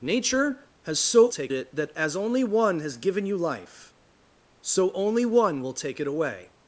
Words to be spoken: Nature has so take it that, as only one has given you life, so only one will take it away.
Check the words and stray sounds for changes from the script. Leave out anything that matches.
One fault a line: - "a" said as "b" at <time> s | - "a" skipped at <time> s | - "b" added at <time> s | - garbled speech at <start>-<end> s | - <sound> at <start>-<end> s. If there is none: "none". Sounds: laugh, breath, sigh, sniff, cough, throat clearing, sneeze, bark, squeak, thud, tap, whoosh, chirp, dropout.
none